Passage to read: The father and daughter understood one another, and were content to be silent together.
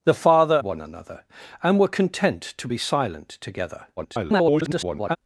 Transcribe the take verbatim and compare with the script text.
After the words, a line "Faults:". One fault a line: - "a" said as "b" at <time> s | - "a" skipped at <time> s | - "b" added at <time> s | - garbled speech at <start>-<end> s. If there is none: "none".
The father one another, and were content to be silent together. [garbled]
Faults:
- "and daughter understood" skipped at 0.6 s
- garbled speech at 4.0-5.2 s